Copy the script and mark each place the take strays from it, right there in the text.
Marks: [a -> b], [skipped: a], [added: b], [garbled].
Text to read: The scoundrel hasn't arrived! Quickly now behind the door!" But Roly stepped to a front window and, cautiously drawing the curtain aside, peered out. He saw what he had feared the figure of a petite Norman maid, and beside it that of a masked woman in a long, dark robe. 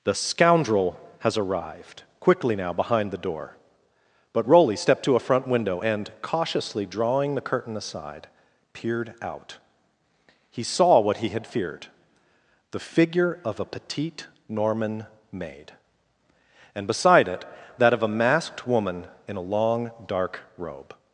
The scoundrel [hasn't -> has] arrived! Quickly now behind the door!" But Roly stepped to a front window and, cautiously drawing the curtain aside, peered out. He saw what he had feared the figure of a petite Norman maid, and beside it that of a masked woman in a long, dark robe.